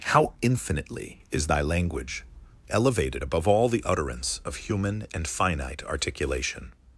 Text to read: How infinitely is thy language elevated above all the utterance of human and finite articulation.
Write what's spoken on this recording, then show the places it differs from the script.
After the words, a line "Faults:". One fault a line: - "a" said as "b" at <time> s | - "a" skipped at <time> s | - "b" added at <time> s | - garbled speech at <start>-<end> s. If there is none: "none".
How infinitely is thy language elevated above all the utterance of human and finite articulation.
Faults:
none